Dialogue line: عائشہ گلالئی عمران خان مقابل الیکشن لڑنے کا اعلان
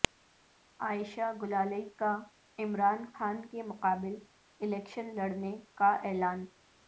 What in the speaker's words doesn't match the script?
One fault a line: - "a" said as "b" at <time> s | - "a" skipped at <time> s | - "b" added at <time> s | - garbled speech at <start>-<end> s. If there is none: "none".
- "کا" added at 2.0 s
- "کے" added at 3.5 s